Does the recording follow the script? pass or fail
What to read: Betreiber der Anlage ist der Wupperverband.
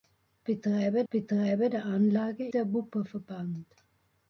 fail